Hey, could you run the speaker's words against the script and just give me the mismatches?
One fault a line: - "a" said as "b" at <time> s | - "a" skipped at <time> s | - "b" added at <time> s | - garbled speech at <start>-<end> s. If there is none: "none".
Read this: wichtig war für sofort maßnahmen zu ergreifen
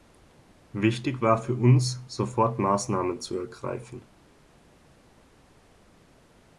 - "uns" added at 1.5 s